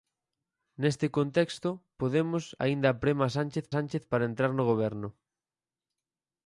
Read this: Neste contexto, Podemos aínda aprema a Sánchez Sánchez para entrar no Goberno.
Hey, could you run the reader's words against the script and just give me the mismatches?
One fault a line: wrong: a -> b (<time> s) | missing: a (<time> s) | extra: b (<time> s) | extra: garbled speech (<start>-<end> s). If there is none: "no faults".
no faults